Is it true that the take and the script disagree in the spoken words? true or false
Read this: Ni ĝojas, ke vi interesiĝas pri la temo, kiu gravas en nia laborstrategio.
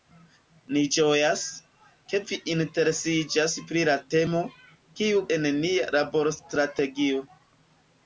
true